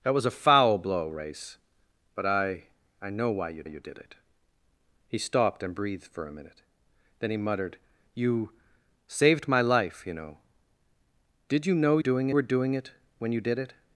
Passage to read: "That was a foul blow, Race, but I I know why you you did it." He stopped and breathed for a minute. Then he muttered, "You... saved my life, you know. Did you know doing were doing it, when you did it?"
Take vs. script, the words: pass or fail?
pass